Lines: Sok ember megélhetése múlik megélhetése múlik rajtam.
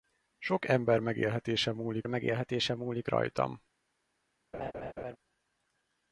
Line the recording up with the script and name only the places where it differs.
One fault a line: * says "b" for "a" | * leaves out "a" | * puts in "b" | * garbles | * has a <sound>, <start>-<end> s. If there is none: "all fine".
* has a laugh, 4.5-5.2 s